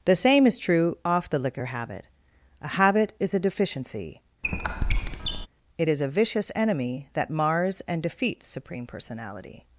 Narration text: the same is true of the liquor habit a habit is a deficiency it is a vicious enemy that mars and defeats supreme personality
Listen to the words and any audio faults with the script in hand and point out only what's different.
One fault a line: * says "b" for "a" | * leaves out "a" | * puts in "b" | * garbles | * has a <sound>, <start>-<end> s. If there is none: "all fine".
* says "off" for "of"
* has a squeak, 4.4-5.5 s